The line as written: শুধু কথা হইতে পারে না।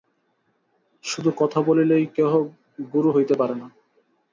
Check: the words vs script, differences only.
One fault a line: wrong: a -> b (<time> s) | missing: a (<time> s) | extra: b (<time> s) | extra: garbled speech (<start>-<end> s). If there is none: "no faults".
extra: বলিলেই কেহ গুরু (1.6 s)